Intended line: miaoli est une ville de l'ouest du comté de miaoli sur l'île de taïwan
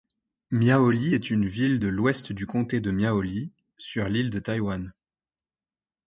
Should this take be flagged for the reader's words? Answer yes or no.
no